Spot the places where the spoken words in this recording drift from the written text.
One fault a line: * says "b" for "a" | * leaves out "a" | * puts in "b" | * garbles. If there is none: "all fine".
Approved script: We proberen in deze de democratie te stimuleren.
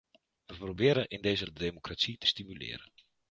all fine